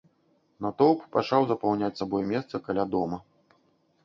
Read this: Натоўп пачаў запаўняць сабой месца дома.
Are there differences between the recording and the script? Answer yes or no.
yes